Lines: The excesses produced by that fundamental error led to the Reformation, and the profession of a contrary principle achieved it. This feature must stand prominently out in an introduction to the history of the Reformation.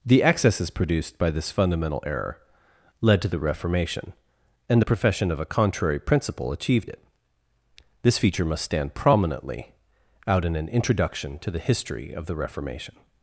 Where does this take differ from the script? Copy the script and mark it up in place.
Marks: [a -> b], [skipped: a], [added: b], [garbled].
The excesses produced by [that -> this] fundamental error led to the Reformation, and the profession of a contrary principle achieved it. This feature must stand prominently out in an introduction to the history of the Reformation.